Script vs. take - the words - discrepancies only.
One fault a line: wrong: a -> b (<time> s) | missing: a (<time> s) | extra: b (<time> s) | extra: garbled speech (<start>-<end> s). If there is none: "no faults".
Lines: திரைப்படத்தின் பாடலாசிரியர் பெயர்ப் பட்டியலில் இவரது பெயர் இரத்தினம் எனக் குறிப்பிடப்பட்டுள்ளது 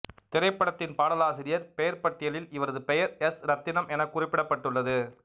extra: எஸ் (3.2 s)